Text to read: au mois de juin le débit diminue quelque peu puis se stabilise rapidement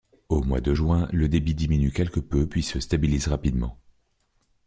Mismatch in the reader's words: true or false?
false